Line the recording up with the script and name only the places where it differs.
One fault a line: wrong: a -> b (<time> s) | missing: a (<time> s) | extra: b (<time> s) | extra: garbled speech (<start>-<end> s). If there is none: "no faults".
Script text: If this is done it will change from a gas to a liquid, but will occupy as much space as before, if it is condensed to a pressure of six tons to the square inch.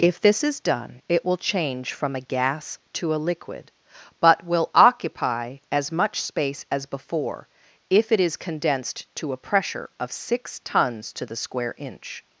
no faults